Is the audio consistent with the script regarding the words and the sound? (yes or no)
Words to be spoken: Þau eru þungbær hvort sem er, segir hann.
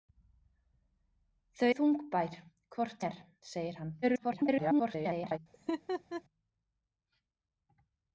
no